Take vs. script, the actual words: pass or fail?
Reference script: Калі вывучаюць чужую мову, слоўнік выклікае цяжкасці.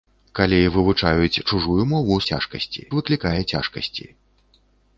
fail